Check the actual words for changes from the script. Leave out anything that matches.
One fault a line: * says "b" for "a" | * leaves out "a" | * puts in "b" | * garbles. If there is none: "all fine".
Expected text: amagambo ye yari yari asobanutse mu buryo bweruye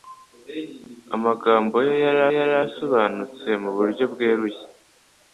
all fine